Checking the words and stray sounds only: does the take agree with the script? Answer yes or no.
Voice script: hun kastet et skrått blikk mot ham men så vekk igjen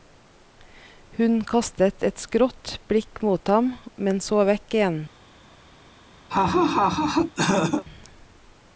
no